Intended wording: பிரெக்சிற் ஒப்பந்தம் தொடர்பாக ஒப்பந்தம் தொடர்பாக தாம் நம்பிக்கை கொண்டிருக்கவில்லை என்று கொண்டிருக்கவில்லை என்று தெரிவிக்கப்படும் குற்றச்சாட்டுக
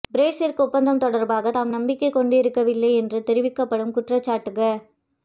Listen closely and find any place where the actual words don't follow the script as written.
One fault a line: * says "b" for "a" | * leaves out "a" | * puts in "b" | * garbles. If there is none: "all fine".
* leaves out "ஒப்பந்தம் தொடர்பாக"
* leaves out "கொண்டிருக்கவில்லை என்று"